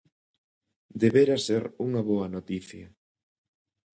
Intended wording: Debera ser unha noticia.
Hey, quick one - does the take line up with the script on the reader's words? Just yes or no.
no